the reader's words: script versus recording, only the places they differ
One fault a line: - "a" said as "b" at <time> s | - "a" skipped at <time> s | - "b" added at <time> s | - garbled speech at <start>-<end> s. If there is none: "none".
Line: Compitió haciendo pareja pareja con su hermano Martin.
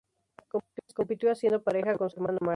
- "pareja" skipped at 2.0 s